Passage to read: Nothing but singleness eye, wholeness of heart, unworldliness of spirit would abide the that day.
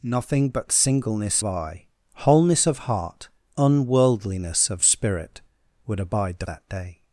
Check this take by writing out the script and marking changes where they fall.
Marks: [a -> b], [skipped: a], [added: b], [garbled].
Nothing but singleness eye, wholeness of heart, unworldliness of spirit would abide the that day.